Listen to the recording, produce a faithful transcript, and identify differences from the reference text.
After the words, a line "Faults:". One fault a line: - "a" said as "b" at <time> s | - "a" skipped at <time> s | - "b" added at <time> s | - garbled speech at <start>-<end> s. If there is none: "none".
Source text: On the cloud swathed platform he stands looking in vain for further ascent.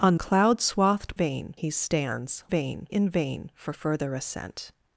On cloud swathed vain he stands vain in vain for further ascent.
Faults:
- "the" skipped at 0.1 s
- "platform" said as "vain" at 1.1 s
- "looking" said as "vain" at 2.5 s